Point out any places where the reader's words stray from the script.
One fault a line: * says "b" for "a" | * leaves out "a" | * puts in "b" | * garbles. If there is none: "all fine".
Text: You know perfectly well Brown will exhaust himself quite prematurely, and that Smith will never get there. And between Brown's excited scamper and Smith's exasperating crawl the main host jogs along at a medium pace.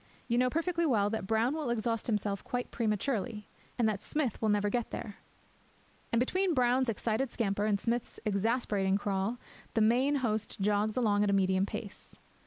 * puts in "that"